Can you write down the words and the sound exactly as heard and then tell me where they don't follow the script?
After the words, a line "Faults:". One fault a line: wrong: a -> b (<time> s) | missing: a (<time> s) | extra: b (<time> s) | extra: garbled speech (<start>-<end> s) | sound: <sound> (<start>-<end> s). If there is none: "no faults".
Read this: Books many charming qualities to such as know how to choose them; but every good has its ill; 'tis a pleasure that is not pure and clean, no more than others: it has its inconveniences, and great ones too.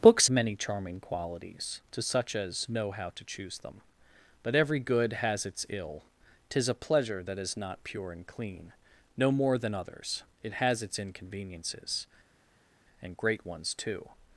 Books many charming qualities to such as know how to choose them; but every good has its ill; 'tis a pleasure that is not pure and clean, no more than others: it has its inconveniences, and great ones too.
Faults:
no faults